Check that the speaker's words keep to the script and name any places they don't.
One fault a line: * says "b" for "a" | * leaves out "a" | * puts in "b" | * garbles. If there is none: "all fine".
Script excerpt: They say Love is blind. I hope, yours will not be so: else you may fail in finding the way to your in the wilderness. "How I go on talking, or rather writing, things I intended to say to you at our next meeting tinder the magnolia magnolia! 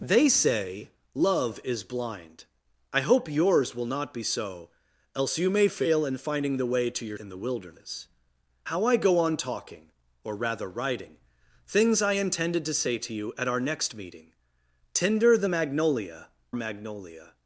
all fine